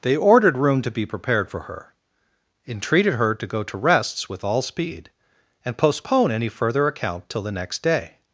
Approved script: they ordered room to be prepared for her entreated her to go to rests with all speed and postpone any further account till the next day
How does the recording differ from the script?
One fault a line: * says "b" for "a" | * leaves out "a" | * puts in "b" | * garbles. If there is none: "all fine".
all fine